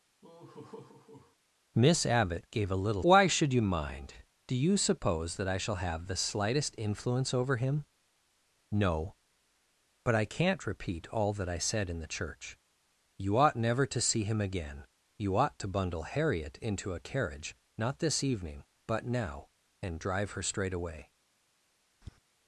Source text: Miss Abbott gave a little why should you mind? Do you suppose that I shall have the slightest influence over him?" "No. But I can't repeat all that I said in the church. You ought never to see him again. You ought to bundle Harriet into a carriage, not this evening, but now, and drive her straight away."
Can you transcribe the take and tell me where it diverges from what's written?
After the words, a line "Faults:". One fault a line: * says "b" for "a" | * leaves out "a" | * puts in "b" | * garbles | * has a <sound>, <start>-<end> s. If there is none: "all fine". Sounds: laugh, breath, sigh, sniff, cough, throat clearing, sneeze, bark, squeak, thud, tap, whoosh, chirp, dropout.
Miss Abbott gave a little why should you mind? Do you suppose that I shall have the slightest influence over him?" "No. But I can't repeat all that I said in the church. You ought never to see him again. You ought to bundle Harriet into a carriage, not this evening, but now, and drive her straight away."
Faults:
* has a laugh, 0.2-1.4 s
* has a tap, 22.0-22.2 s